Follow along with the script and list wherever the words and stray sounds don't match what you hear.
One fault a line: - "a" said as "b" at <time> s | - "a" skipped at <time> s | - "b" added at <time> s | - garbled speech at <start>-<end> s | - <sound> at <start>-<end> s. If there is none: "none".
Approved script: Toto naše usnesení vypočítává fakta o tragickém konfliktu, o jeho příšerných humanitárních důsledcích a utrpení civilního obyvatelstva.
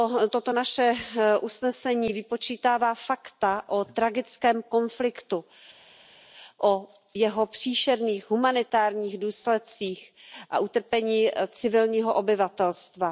none